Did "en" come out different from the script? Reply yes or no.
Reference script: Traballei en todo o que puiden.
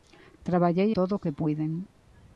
yes